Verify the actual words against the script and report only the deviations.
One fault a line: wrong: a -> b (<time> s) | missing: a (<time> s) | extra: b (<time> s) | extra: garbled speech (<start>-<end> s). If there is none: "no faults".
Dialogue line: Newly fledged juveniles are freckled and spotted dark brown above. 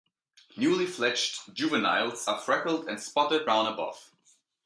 missing: dark (3.5 s)